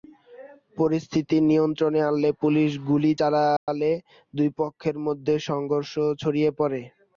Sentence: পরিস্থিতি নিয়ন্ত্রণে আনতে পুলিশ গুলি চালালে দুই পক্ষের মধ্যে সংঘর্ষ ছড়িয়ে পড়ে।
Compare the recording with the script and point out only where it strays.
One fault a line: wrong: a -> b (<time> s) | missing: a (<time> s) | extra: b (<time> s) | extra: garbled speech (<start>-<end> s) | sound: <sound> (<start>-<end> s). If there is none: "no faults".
sound: dropout (3.6-3.7 s)